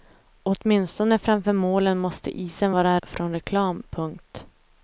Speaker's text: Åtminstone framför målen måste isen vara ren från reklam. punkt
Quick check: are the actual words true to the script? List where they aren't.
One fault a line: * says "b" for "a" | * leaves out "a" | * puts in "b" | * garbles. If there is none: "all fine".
* leaves out "ren"